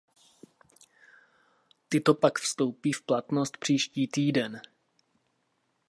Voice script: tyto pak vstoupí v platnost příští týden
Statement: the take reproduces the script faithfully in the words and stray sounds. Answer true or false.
true